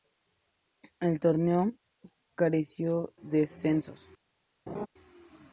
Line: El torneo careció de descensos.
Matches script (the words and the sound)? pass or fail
fail